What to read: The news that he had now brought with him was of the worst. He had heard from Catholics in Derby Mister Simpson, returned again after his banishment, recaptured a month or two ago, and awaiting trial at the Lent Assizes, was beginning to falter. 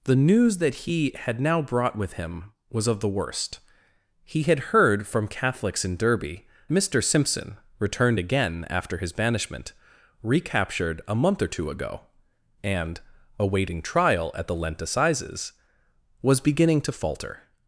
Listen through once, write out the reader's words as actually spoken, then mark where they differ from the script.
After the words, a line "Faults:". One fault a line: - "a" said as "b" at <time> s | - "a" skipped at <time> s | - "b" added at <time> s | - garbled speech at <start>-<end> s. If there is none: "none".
The news that he had now brought with him was of the worst. He had heard from Catholics in Derby Mister Simpson, returned again after his banishment, recaptured a month or two ago, and awaiting trial at the Lent Assizes, was beginning to falter.
Faults:
none